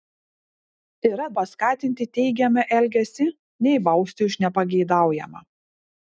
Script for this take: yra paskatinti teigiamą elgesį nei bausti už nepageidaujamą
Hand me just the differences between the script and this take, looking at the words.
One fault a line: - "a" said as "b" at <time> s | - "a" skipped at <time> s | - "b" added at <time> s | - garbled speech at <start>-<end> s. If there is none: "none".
none